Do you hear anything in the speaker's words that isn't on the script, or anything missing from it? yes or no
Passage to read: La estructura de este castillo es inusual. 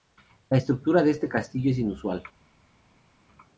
no